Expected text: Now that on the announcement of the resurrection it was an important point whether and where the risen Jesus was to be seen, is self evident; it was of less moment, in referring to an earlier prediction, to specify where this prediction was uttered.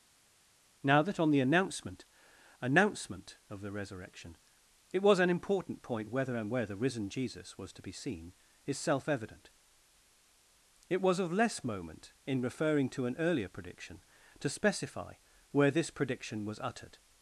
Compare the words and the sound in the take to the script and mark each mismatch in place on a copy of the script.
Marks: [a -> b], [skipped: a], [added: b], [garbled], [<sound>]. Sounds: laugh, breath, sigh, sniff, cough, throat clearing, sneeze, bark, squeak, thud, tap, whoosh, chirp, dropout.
Now that on the announcement [added: announcement] of the resurrection it was an important point whether and where the risen Jesus was to be seen, is self evident; it was of less moment, in referring to an earlier prediction, to specify where this prediction was uttered.